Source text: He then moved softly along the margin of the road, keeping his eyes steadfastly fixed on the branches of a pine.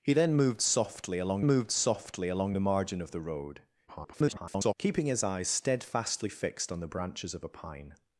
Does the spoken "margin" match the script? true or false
true